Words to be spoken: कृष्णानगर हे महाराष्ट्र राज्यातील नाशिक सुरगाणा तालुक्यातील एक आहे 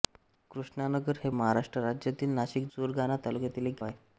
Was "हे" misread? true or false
false